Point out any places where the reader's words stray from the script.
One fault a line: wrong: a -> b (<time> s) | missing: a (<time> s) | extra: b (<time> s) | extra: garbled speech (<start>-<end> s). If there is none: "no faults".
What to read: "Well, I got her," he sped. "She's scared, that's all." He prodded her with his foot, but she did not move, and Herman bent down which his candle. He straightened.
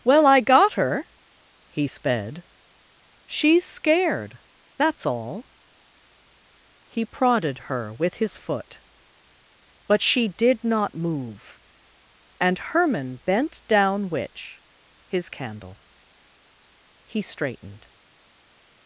no faults